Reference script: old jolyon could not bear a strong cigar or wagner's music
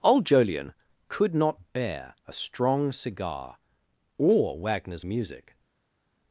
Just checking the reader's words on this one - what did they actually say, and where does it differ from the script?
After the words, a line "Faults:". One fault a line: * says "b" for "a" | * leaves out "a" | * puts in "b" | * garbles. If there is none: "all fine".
old jolyon could not bear a strong cigar or wagner's music
Faults:
all fine